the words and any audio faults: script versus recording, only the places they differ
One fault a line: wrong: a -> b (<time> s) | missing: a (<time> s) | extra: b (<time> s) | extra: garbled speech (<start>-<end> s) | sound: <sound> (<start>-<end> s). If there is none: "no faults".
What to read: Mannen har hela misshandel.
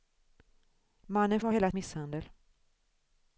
no faults